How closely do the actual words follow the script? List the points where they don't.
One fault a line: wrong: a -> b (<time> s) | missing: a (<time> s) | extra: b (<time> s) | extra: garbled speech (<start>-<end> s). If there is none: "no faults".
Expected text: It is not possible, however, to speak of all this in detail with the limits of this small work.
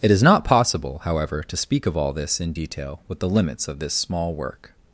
no faults